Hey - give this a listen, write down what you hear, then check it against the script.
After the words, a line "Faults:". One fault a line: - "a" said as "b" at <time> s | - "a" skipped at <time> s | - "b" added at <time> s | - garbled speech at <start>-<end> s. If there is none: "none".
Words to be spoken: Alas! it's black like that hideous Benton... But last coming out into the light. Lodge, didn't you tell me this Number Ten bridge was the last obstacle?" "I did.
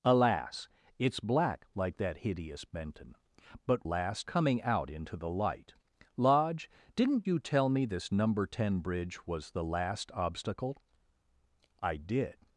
Alas! it's black like that hideous Benton... But last coming out into the light. Lodge, didn't you tell me this Number Ten bridge was the last obstacle?" "I did.
Faults:
none